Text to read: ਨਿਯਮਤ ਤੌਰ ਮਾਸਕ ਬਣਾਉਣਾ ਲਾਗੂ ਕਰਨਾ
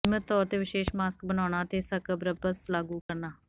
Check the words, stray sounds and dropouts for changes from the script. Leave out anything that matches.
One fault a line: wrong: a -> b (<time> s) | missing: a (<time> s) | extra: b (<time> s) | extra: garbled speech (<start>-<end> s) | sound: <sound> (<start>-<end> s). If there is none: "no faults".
extra: ਤੇ ਵਿਸ਼ੇਸ਼ (0.5 s)
extra: ਅਤੇ ਸਕ੍ਰਬਸ (1.6 s)
sound: dropout (3.0-3.1 s)